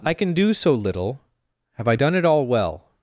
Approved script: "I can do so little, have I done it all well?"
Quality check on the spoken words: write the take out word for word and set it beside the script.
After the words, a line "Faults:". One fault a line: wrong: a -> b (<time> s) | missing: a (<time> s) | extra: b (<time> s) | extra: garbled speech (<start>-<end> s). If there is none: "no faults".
"I can do so little, have I done it all well?"
Faults:
no faults